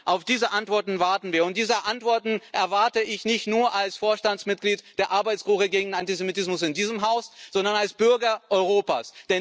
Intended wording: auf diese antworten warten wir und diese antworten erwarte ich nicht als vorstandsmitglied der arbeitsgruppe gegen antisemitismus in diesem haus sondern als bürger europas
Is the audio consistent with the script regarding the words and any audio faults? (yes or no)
no